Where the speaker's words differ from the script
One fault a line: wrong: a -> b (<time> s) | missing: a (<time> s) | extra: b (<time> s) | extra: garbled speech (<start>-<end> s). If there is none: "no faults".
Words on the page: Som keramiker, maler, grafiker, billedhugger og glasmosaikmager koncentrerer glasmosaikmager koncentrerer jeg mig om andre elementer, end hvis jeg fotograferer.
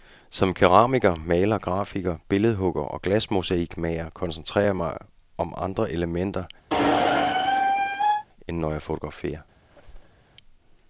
missing: glasmosaikmager koncentrerer (4.7 s)
wrong: hvis -> når (8.6 s)